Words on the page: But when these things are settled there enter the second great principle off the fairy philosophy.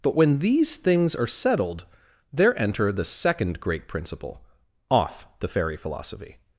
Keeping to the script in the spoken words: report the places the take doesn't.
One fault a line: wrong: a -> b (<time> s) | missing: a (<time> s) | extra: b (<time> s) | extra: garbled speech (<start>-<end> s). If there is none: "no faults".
no faults